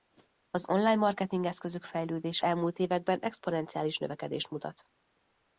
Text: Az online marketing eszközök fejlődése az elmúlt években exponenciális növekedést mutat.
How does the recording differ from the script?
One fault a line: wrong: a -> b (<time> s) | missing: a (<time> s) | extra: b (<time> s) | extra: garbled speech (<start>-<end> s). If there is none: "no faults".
missing: az (2.5 s)